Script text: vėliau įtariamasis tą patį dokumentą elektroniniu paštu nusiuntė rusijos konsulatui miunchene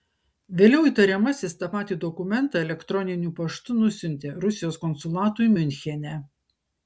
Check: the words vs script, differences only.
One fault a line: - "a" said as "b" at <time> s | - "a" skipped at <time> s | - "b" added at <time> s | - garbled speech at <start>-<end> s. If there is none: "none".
none